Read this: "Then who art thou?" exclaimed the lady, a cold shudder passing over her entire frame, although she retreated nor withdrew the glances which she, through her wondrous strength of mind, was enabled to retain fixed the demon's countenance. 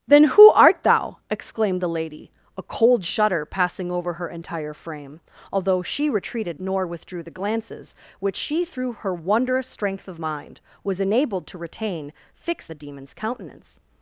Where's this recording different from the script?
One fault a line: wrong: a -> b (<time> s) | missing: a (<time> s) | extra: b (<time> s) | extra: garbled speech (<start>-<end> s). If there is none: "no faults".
no faults